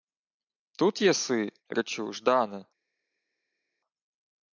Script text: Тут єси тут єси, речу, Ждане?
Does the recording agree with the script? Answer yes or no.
no